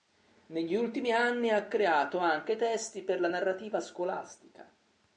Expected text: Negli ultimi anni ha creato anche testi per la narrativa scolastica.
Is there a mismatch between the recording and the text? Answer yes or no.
no